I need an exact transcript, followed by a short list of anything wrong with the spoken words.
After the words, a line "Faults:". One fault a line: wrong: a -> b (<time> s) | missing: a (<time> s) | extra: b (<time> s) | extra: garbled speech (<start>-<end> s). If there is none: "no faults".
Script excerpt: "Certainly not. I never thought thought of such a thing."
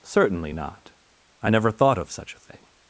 "Certainly not. I never thought of such a thing."
Faults:
missing: thought (2.0 s)